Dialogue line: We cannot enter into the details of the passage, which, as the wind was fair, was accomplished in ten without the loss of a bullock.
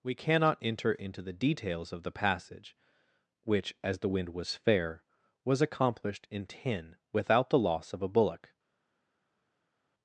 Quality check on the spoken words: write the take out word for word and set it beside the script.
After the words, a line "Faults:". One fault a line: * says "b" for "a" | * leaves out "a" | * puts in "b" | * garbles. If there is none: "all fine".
We cannot enter into the details of the passage, which, as the wind was fair, was accomplished in ten without the loss of a bullock.
Faults:
all fine